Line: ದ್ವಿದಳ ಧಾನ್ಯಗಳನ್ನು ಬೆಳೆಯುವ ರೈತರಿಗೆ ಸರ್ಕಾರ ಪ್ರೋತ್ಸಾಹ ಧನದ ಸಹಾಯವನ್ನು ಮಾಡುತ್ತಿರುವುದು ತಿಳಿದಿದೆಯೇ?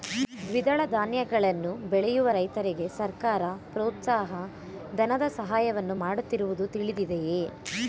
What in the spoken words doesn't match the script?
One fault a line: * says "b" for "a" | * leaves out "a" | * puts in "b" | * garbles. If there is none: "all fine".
all fine